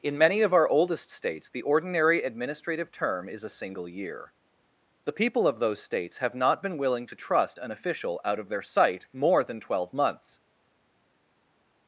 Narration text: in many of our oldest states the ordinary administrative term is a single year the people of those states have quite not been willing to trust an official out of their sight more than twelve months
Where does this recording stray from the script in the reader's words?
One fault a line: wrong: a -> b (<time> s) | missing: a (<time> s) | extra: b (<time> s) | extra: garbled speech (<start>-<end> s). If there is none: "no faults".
missing: quite (6.3 s)